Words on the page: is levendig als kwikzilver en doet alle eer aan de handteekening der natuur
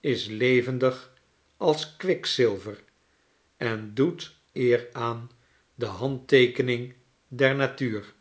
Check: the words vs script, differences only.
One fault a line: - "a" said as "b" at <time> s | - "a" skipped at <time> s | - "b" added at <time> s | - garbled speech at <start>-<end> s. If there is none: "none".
- "alle" skipped at 4.3 s